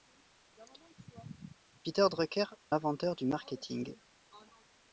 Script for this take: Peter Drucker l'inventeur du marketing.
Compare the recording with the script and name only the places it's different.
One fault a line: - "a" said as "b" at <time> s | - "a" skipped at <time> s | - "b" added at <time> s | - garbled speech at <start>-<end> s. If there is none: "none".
none